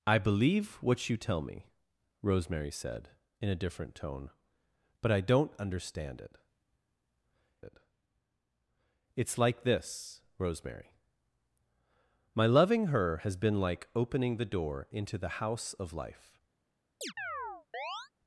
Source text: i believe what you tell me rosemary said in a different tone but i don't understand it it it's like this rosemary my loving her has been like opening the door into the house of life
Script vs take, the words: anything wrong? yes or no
no